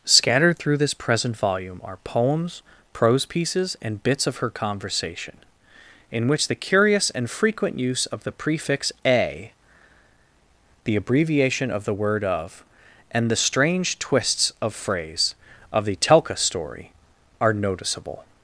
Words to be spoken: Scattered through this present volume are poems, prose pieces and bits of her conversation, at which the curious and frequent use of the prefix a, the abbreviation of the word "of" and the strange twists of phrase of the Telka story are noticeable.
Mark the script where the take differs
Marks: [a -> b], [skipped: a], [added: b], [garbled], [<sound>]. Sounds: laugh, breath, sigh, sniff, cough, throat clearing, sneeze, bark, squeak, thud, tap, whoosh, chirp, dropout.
Scattered through this present volume are poems, prose pieces and bits of her conversation, [at -> in] which the curious and frequent use of the prefix a, the abbreviation of the word "of" and the strange twists of phrase of the Telka story are noticeable.